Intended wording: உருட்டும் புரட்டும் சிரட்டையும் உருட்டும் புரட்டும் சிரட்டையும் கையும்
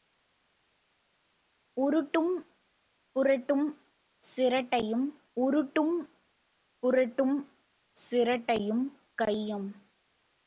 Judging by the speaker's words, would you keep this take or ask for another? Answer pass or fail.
pass